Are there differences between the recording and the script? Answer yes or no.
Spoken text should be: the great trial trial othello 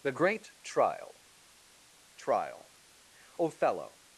no